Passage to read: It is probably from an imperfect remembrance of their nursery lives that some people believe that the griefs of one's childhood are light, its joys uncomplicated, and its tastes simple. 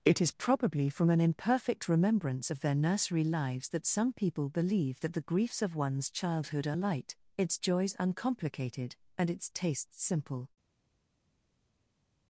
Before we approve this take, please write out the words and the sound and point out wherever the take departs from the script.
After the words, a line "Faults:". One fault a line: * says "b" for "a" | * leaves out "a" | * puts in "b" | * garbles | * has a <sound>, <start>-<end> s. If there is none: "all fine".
It is probably from an imperfect remembrance of their nursery lives that some people believe that the griefs of one's childhood are light, its joys uncomplicated, and its tastes simple.
Faults:
all fine